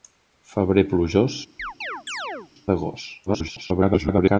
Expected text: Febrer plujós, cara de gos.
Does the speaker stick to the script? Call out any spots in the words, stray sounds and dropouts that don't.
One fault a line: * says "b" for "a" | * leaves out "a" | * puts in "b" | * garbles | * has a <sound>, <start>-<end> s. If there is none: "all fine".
* leaves out "cara"
* has a chirp, 1.6-2.5 s
* garbles